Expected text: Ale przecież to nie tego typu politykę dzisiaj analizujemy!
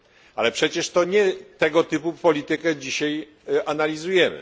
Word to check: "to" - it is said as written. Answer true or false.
true